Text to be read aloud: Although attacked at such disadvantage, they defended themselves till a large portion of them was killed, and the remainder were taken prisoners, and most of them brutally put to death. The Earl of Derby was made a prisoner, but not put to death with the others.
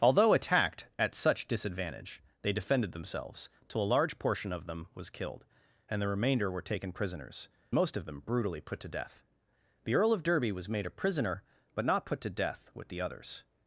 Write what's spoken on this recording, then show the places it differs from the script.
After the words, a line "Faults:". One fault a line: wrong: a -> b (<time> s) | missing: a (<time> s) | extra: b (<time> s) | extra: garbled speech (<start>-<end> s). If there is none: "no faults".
Although attacked at such disadvantage, they defended themselves till a large portion of them was killed, and the remainder were taken prisoners, most of them brutally put to death. The Earl of Derby was made a prisoner, but not put to death with the others.
Faults:
missing: and (7.5 s)